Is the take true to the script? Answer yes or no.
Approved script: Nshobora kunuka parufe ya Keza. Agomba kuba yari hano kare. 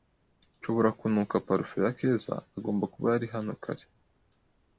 yes